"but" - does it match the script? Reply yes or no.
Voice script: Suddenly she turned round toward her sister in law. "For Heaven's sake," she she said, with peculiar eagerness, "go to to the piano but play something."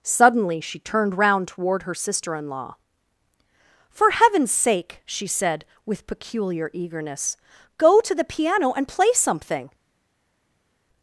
no